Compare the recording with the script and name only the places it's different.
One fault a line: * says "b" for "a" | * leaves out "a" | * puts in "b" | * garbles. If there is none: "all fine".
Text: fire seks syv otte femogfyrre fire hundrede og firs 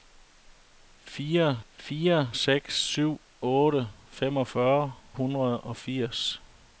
* puts in "fire"
* leaves out "fire"